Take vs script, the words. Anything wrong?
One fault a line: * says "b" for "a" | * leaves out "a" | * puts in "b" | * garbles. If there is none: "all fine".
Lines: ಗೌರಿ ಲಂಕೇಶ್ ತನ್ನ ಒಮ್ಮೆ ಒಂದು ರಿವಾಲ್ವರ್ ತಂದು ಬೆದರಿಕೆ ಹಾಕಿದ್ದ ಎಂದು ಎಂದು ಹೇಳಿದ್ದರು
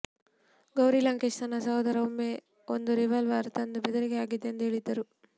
* puts in "ಸಹೋದರ"
* leaves out "ಎಂದು"